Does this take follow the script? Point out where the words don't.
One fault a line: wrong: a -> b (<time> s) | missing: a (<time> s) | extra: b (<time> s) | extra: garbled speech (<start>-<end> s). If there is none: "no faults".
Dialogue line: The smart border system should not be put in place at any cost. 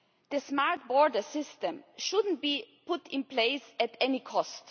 no faults